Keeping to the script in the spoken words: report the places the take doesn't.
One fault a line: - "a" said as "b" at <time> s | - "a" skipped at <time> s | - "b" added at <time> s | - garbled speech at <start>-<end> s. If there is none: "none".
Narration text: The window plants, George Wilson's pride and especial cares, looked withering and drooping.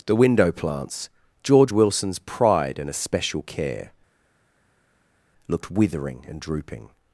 - "cares" said as "care" at 3.4 s